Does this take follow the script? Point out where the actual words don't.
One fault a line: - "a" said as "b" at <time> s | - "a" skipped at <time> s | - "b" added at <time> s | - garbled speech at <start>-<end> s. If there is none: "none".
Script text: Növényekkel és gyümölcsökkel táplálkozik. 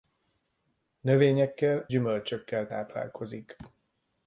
- "és" skipped at 1.9 s